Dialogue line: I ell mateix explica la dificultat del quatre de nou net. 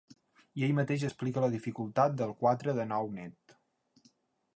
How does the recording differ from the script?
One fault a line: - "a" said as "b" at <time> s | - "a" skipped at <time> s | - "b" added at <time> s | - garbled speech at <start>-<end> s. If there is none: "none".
none